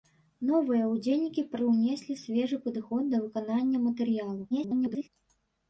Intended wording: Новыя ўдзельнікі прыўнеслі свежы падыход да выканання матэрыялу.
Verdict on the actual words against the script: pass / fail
fail